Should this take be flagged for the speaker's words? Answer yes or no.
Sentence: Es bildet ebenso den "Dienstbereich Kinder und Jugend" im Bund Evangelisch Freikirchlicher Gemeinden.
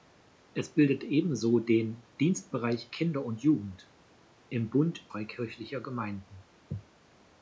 yes